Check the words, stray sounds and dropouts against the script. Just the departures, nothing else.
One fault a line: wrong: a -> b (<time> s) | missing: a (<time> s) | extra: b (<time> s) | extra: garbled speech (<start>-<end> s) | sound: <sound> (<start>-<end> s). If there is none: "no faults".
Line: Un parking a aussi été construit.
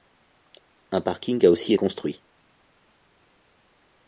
missing: été (1.8 s)